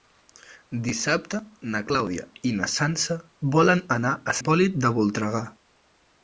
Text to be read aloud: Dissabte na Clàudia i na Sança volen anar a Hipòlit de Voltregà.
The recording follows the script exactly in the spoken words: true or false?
true